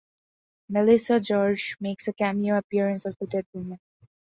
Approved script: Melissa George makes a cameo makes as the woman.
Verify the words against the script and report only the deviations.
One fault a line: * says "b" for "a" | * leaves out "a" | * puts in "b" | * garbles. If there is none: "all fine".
* says "appearance" for "makes"
* puts in "dead"